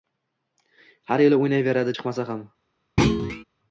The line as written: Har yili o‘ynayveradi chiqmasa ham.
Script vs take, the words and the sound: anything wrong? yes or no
yes